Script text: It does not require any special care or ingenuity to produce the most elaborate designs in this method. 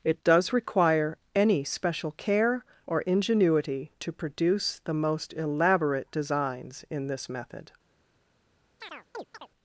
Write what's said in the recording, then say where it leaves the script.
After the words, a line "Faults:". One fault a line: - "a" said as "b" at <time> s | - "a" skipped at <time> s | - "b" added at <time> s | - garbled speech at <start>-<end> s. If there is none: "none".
It does require any special care or ingenuity to produce the most elaborate designs in this method.
Faults:
- "not" skipped at 0.5 s